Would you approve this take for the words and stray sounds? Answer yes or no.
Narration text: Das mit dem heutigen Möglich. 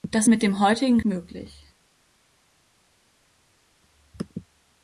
yes